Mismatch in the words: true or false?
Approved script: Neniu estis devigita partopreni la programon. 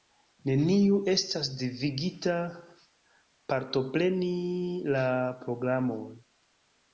true